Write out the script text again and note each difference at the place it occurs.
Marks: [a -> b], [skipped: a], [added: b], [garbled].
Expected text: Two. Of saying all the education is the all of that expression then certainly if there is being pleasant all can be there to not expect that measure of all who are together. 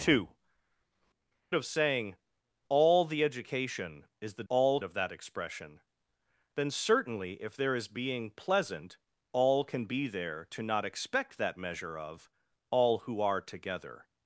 Two. Of saying all the education is the all of that expression then certainly if there is being pleasant all can be there to not expect that measure of all who are together.